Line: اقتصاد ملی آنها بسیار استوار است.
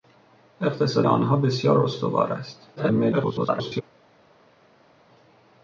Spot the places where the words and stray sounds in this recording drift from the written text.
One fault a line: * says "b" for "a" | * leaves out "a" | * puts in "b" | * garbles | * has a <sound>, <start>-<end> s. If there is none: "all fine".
* leaves out "ملی"
* garbles